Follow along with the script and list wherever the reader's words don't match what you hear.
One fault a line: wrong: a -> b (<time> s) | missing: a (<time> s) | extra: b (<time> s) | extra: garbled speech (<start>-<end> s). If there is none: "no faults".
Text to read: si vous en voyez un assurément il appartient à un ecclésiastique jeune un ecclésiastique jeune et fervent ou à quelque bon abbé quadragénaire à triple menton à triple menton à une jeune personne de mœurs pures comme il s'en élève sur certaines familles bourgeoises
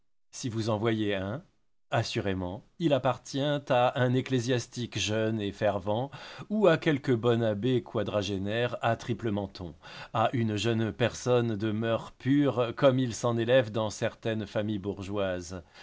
missing: un ecclésiastique jeune (5.4 s)
missing: triple menton à (10.3 s)
wrong: sur -> dans (13.7 s)